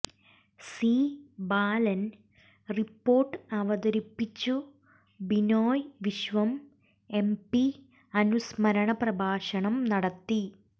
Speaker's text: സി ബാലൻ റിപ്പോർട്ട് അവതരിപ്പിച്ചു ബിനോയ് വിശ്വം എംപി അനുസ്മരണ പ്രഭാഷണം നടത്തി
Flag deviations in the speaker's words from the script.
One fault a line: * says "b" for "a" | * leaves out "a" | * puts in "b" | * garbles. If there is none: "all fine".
all fine